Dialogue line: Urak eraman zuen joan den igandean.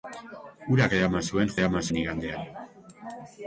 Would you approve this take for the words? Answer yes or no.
no